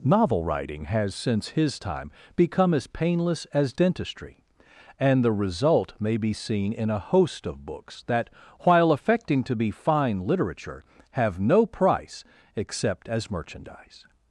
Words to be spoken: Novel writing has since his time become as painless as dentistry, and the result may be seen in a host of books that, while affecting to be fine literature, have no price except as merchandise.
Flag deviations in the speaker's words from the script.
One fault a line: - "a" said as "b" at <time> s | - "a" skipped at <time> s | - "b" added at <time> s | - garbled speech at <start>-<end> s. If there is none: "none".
none